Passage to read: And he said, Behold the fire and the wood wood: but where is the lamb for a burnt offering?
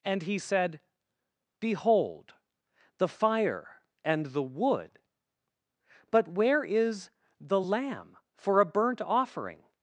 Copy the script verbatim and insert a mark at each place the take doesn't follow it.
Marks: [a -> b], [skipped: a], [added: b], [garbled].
And he said, Behold the fire and the wood [skipped: wood:] but where is the lamb for a burnt offering?